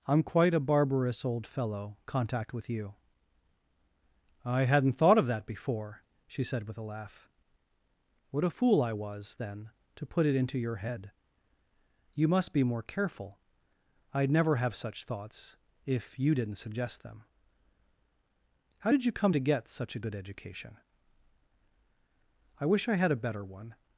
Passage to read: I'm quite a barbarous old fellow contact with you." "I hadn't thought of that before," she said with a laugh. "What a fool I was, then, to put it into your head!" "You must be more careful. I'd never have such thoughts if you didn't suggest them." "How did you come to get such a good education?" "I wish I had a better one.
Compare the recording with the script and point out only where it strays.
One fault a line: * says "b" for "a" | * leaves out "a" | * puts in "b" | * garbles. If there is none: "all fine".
all fine